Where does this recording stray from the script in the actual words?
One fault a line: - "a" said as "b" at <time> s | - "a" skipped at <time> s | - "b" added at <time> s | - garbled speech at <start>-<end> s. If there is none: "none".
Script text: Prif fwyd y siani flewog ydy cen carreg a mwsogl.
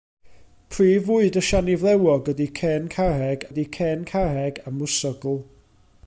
- "ydy cen carreg" added at 3.5 s